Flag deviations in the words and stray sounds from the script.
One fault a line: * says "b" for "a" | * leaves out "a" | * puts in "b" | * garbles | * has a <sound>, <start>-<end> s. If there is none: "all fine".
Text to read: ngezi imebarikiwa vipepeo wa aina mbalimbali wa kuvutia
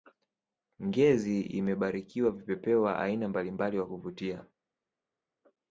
all fine